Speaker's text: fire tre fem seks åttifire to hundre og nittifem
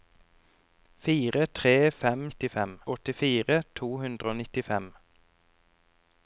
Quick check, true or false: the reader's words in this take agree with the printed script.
false